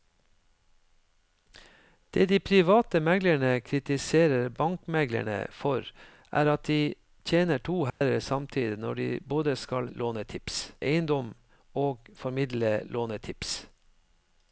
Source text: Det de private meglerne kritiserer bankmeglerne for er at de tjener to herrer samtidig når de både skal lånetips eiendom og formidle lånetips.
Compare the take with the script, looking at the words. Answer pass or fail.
pass